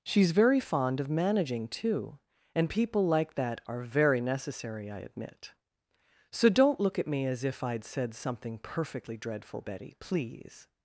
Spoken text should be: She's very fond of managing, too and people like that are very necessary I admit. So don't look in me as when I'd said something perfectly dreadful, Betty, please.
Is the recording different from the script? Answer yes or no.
yes